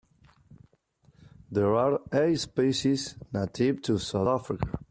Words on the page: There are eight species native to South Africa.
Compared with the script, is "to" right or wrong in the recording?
right